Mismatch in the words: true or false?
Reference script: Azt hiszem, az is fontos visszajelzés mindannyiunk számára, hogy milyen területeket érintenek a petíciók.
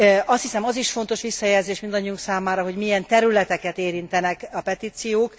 false